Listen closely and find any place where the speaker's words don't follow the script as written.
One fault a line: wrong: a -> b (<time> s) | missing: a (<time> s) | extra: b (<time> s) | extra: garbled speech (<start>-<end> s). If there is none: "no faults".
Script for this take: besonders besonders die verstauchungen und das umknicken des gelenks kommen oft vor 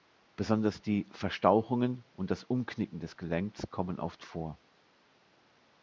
missing: besonders (0.8 s)